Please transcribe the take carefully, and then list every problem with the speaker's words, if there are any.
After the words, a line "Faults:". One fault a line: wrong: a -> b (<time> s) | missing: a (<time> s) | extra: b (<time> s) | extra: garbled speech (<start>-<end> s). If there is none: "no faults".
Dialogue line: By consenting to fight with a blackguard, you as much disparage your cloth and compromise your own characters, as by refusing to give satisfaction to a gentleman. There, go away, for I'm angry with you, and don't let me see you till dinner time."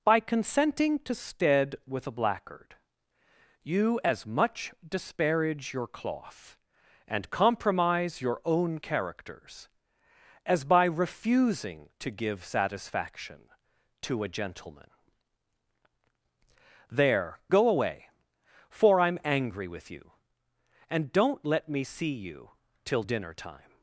By consenting to stead with a blackguard, you as much disparage your cloth and compromise your own characters, as by refusing to give satisfaction to a gentleman. There, go away, for I'm angry with you, and don't let me see you till dinner time."
Faults:
wrong: fight -> stead (1.1 s)